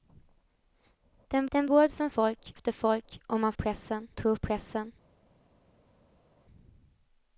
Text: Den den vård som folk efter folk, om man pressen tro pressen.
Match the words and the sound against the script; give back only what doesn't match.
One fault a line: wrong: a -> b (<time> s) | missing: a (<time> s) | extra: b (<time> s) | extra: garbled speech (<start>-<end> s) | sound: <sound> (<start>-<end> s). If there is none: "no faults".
no faults